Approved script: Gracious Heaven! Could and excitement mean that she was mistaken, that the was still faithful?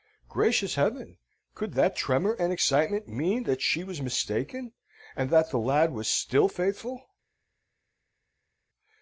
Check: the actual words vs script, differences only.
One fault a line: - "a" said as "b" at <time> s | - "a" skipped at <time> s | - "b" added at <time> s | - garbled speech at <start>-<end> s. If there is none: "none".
- "that tremor" added at 1.7 s
- "and" added at 5.2 s
- "lad" added at 5.6 s